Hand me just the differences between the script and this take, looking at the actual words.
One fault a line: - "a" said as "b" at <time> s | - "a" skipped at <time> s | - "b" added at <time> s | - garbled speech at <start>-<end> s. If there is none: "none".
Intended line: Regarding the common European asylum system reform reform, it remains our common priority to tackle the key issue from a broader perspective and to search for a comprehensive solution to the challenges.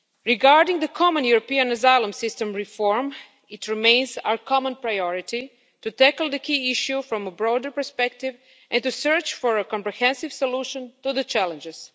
- "reform" skipped at 3.1 s